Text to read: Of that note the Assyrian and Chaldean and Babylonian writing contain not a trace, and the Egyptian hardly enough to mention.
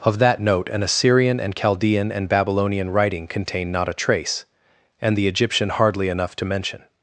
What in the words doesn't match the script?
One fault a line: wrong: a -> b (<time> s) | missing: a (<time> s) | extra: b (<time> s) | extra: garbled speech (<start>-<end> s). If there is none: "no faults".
wrong: the -> an (0.7 s)